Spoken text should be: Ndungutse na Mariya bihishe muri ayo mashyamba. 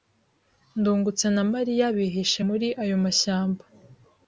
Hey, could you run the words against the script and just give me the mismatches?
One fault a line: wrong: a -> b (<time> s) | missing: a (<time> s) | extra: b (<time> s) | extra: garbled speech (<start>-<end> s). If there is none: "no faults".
no faults